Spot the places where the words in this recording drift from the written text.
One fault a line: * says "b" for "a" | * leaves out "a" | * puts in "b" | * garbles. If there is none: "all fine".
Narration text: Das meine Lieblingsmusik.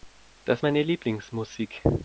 all fine